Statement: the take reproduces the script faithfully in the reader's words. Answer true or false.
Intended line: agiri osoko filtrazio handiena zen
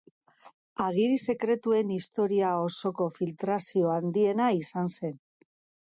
false